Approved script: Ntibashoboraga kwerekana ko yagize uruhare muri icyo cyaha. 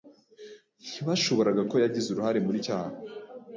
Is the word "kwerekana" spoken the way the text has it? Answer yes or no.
no